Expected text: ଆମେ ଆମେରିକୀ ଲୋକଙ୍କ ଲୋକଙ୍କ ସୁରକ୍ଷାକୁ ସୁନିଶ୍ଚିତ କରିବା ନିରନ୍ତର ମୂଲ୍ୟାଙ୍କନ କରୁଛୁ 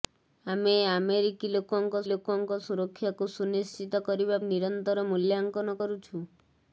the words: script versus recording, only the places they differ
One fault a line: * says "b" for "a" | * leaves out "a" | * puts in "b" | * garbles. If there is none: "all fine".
all fine